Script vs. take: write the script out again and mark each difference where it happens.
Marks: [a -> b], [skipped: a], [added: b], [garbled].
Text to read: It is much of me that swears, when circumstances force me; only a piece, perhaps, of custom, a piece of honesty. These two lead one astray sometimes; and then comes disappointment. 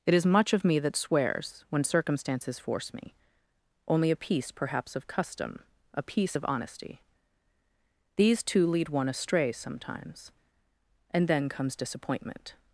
It is much of me that swears, when circumstances force me; only a piece, perhaps, of custom, a piece of honesty. These two lead one astray sometimes; and then comes disappointment.